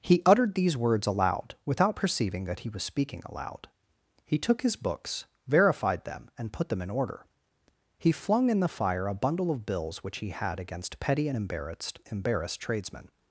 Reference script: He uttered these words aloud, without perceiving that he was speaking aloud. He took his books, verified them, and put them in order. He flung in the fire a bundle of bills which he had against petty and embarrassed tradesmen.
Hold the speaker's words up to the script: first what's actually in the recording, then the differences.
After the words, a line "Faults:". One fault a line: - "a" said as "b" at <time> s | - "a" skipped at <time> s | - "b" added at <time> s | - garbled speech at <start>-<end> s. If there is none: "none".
He uttered these words aloud, without perceiving that he was speaking aloud. He took his books, verified them, and put them in order. He flung in the fire a bundle of bills which he had against petty and embarrassed embarrassed tradesmen.
Faults:
- "embarrassed" added at 12.1 s